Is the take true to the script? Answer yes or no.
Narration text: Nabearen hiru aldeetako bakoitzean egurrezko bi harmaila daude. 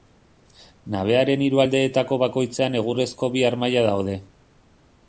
yes